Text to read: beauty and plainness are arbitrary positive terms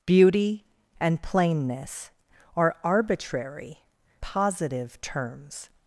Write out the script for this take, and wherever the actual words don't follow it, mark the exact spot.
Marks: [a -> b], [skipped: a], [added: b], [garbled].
beauty and plainness are arbitrary positive terms